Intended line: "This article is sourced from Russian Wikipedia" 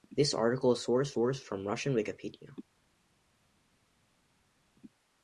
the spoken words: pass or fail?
fail